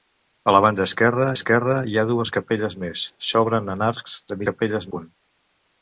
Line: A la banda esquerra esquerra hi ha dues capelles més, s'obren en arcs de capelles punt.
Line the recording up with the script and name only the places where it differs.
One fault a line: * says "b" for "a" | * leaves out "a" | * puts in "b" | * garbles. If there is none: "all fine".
all fine